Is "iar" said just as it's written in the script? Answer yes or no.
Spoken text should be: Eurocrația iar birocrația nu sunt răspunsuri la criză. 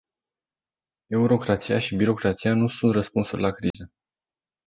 no